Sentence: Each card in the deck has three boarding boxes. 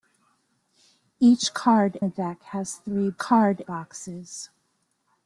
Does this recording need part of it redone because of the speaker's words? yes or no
yes